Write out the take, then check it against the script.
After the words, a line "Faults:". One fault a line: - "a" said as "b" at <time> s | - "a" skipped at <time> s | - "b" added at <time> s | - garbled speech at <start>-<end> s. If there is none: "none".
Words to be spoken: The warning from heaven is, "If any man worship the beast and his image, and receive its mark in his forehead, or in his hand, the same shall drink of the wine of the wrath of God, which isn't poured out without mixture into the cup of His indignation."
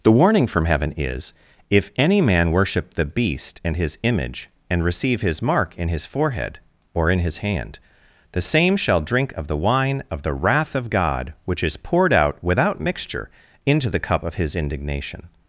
The warning from heaven is, "If any man worship the beast and his image, and receive his mark in his forehead, or in his hand, the same shall drink of the wine of the wrath of God, which is poured out without mixture into the cup of His indignation."
Faults:
- "its" said as "his" at 5.2 s
- "isn't" said as "is" at 11.6 s